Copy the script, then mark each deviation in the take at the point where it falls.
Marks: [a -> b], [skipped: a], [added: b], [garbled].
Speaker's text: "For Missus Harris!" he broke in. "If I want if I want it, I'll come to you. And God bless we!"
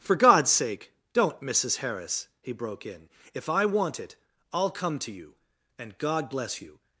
"For [added: God's sake don't] Missus Harris!" he broke in. "If I want [skipped: if I want] it, I'll come to you. And God bless [we!" -> you]